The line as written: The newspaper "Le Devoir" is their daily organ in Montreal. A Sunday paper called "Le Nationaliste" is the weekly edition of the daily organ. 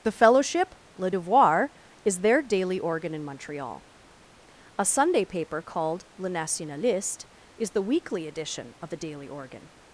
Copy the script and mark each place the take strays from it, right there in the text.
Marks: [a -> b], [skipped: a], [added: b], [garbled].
The [newspaper -> fellowship] "Le Devoir" is their daily organ in Montreal. A Sunday paper called "Le Nationaliste" is the weekly edition of the daily organ.